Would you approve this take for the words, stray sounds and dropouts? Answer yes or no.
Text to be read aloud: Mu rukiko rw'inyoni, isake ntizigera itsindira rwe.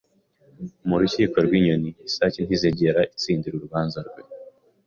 no